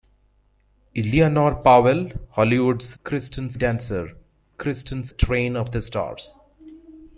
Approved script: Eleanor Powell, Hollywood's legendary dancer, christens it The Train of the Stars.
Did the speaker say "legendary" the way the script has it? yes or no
no